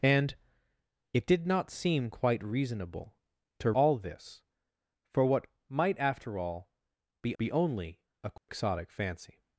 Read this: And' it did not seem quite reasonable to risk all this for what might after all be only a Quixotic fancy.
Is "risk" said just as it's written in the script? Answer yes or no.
no